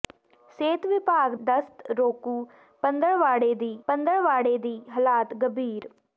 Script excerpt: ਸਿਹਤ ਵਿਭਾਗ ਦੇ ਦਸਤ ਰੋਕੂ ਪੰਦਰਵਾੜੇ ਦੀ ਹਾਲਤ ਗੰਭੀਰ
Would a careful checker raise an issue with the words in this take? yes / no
yes